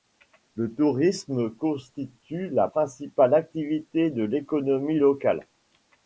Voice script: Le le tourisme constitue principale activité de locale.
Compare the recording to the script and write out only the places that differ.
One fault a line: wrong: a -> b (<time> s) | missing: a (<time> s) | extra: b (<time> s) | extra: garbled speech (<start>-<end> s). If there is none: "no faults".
missing: le (0.7 s)
extra: la (2.5 s)
extra: l'économie (4.2 s)